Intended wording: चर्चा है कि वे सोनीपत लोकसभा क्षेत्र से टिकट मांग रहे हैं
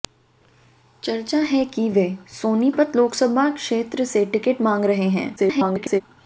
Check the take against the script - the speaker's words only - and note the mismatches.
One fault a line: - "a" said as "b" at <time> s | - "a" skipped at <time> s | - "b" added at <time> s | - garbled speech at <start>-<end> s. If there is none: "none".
- garbled speech at 5.4-6.0 s